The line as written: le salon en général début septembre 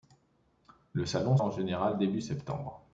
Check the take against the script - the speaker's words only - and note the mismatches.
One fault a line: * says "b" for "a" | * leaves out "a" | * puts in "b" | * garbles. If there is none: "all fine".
all fine